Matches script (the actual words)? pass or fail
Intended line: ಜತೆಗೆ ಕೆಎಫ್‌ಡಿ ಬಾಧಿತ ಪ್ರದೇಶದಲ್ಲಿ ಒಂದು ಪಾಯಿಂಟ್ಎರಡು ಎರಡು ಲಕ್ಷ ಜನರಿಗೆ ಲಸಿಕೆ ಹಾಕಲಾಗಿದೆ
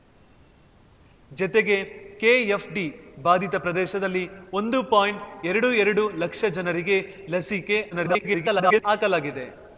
fail